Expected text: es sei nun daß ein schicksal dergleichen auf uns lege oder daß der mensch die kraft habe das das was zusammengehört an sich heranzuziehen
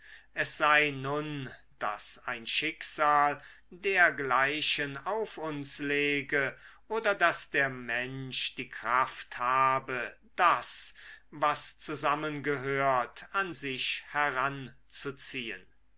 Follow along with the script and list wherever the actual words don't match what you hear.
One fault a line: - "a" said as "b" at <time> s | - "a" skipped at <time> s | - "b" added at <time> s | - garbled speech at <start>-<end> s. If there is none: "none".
- "das" skipped at 10.9 s